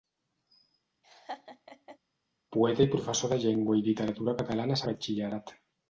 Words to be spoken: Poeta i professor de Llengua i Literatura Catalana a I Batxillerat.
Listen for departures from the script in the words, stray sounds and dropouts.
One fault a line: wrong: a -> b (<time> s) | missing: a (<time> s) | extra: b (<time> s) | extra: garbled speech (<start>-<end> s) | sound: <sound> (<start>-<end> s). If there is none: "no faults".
sound: laugh (1.0-2.0 s)